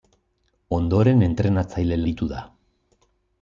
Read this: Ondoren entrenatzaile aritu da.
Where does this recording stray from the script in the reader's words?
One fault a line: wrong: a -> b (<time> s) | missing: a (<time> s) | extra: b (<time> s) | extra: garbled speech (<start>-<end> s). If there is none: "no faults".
no faults